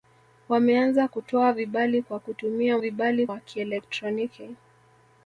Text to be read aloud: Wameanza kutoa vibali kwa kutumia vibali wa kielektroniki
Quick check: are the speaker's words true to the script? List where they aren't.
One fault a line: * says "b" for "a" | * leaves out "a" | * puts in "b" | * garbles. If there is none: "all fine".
all fine